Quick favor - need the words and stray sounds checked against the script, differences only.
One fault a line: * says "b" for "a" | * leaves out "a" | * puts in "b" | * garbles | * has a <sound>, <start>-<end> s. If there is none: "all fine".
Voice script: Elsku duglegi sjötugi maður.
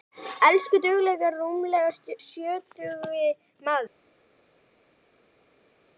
* puts in "rúmlega"